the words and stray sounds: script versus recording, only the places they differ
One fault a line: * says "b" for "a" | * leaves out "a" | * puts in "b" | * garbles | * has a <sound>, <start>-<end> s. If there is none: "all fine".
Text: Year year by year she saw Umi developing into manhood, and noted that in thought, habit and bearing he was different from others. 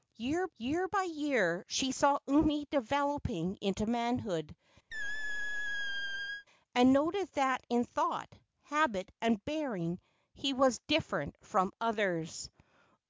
* has a squeak, 4.9-6.5 s